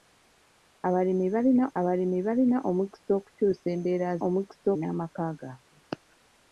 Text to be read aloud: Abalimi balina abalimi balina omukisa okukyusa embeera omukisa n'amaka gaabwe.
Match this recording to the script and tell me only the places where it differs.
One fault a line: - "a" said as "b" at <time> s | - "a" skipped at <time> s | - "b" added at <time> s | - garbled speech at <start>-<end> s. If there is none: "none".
none